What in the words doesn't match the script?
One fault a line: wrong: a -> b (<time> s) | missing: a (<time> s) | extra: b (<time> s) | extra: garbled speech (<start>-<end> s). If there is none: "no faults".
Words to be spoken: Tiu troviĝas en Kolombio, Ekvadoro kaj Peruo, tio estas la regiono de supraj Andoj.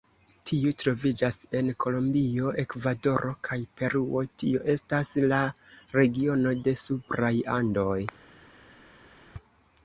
no faults